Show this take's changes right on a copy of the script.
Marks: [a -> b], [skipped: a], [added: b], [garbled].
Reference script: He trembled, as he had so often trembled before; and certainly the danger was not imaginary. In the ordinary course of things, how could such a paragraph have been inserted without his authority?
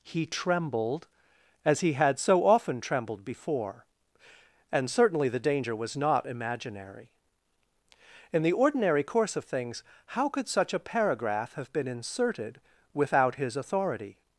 He trembled, as he had so often trembled before; and certainly the danger was not imaginary. In the ordinary course of things, how could such a paragraph have been inserted without his authority?